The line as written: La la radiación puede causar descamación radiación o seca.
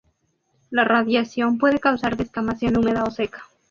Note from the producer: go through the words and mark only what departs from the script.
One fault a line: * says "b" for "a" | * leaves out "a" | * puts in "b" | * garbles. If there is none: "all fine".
* leaves out "la"
* says "húmeda" for "radiación"